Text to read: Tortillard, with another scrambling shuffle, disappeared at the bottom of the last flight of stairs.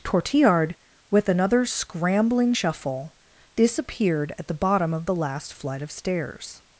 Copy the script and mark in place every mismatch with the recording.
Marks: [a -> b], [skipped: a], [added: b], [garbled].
Tortillard, with another scrambling shuffle, disappeared at the bottom of the last flight of stairs.